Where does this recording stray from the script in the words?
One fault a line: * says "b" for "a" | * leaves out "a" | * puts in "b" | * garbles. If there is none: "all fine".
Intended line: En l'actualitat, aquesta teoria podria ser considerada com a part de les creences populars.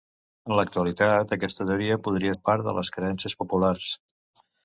* leaves out "ser considerada com"